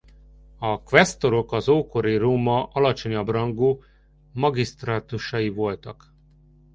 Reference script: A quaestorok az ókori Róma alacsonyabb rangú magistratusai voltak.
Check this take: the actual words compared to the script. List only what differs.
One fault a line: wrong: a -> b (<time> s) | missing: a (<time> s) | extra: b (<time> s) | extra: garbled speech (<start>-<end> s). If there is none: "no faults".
no faults